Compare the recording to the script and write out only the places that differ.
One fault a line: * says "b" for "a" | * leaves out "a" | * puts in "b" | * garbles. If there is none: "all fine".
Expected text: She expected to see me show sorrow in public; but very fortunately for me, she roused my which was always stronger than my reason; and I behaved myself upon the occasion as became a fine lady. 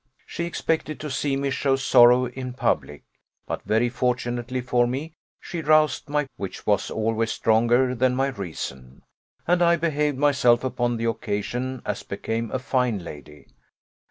all fine